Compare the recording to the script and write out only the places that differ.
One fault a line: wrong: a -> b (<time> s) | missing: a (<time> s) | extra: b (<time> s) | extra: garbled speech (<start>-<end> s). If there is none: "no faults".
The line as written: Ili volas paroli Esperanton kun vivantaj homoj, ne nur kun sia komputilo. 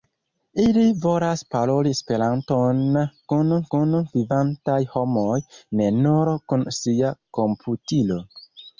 extra: kun (3.7 s)